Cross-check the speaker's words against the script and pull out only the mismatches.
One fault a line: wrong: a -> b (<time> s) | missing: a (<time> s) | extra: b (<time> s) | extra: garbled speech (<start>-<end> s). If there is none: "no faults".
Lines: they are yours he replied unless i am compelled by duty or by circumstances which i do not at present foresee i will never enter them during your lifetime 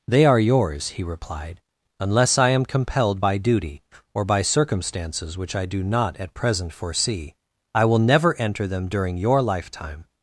no faults